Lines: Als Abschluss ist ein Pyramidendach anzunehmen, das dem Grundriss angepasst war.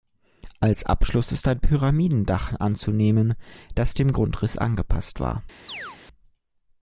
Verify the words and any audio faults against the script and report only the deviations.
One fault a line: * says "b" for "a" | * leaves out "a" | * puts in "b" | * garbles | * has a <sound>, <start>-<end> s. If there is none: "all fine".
* has a chirp, 5.7-6.0 s